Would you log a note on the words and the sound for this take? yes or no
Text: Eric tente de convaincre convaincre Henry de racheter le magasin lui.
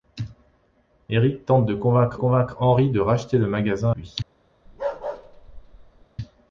yes